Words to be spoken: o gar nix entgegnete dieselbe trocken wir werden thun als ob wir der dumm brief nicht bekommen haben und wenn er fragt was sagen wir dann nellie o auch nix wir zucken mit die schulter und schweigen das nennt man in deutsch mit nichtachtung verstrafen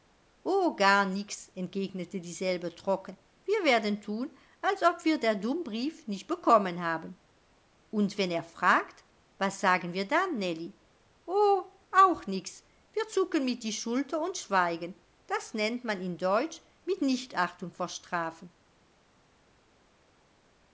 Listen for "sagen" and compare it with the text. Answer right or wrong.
right